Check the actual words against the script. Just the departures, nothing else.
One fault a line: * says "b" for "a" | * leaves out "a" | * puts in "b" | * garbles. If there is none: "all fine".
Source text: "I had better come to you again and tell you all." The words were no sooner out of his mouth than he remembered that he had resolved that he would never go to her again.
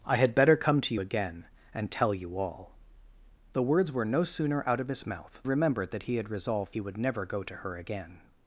* leaves out "you"
* leaves out "than he"
* leaves out "that"